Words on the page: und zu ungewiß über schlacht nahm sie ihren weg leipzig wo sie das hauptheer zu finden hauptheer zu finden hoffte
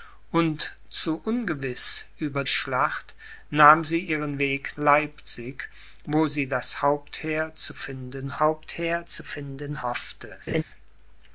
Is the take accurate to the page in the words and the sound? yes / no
no